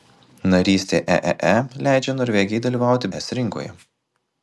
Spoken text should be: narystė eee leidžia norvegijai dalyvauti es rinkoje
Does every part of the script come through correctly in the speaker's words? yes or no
yes